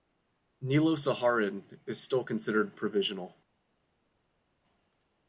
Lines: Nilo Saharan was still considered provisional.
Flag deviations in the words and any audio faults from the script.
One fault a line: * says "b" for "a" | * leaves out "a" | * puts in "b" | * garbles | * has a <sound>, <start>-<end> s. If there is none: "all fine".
* says "is" for "was"